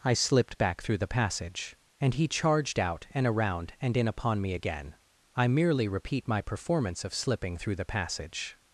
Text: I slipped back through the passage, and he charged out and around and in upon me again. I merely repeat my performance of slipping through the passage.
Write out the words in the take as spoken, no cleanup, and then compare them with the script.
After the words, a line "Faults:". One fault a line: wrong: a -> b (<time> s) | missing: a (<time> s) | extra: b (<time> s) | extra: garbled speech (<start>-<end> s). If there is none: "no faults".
I slipped back through the passage, and he charged out and around and in upon me again. I merely repeat my performance of slipping through the passage.
Faults:
no faults